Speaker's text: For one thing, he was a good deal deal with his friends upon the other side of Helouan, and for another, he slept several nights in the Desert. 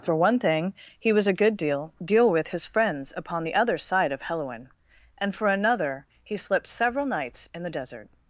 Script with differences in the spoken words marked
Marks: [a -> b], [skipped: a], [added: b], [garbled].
For one thing, he was a good deal deal with his friends upon the other side of Helouan, and for another, he slept several nights in the Desert.